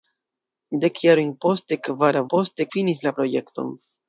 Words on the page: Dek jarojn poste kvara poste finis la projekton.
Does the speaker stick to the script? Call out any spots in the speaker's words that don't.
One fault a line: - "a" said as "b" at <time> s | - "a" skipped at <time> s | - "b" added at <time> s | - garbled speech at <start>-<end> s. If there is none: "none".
none